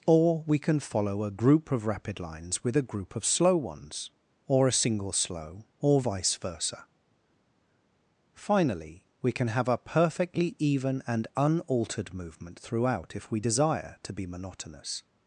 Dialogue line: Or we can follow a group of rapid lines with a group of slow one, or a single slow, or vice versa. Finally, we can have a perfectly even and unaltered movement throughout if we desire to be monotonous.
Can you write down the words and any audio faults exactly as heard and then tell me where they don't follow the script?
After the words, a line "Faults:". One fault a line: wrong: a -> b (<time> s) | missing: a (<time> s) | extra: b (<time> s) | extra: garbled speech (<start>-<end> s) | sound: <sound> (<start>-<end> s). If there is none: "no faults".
Or we can follow a group of rapid lines with a group of slow ones, or a single slow, or vice versa. Finally, we can have a perfectly even and unaltered movement throughout if we desire to be monotonous.
Faults:
wrong: one -> ones (3.5 s)